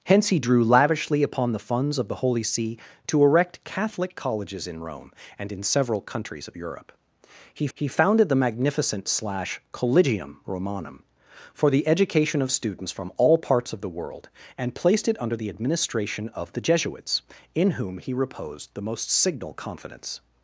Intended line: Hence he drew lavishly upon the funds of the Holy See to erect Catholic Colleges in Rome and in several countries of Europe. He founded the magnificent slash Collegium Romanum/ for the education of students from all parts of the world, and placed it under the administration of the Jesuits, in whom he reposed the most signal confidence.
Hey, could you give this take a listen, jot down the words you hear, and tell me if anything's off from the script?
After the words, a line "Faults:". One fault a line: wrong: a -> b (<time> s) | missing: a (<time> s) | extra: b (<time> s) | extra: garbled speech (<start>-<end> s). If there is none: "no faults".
Hence he drew lavishly upon the funds of the Holy See to erect Catholic Colleges in Rome and in several countries of Europe. He he founded the magnificent slash Collegium Romanum/ for the education of students from all parts of the world, and placed it under the administration of the Jesuits, in whom he reposed the most signal confidence.
Faults:
extra: he (7.7 s)